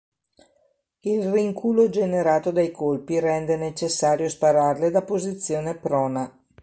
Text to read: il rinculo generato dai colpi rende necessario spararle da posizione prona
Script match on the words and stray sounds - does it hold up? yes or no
yes